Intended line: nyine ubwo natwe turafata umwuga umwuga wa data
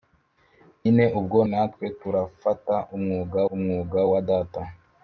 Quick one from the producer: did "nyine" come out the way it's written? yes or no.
yes